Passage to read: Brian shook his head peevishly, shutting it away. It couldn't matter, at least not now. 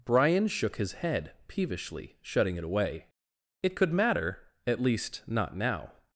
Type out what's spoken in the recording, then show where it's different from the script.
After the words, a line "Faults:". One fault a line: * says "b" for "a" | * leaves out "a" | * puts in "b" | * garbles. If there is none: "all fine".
Brian shook his head peevishly, shutting it away. It could matter, at least not now.
Faults:
* says "could" for "couldn't"